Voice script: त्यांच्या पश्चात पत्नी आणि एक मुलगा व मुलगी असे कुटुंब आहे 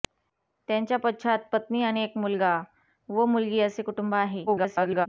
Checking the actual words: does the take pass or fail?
fail